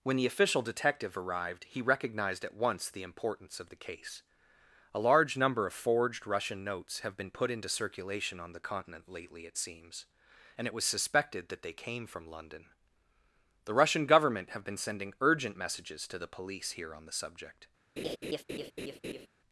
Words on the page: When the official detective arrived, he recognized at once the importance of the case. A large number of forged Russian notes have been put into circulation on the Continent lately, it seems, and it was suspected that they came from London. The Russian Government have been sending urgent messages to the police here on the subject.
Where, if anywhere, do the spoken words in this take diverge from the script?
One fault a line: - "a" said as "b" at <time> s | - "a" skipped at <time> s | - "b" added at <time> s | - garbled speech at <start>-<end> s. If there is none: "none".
none